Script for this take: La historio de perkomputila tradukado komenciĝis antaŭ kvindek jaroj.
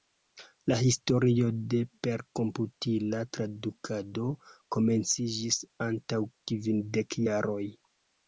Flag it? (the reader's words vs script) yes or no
no